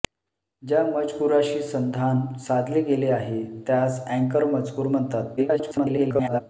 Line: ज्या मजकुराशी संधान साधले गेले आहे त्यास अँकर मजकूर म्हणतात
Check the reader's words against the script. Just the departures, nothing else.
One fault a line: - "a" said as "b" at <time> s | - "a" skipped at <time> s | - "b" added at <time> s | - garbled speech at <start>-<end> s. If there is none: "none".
- garbled speech at 5.4-6.4 s